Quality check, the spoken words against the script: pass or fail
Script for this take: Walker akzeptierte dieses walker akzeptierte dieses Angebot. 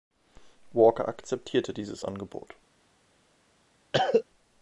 fail